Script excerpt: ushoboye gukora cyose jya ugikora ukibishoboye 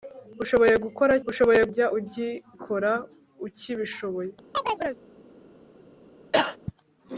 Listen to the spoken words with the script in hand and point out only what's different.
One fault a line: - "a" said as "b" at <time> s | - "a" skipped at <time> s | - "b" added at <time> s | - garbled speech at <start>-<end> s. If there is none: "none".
- "cyose" said as "ushoboye" at 1.3 s